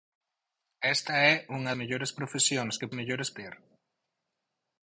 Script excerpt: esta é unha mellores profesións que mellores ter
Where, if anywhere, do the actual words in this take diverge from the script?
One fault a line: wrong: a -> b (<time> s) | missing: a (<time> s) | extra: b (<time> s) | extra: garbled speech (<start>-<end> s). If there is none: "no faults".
no faults